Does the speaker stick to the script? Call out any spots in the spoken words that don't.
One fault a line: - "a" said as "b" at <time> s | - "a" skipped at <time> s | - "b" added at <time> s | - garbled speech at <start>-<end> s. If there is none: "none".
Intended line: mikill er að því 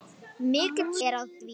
none